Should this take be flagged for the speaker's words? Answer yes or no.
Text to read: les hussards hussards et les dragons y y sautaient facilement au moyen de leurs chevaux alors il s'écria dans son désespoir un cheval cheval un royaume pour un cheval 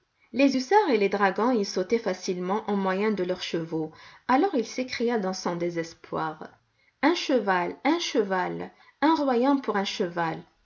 yes